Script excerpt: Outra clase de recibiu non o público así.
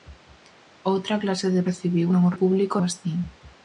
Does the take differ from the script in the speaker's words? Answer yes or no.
no